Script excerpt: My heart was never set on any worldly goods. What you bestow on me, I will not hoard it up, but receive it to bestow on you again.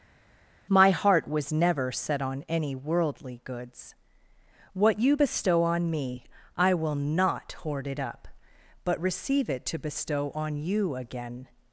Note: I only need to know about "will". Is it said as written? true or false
true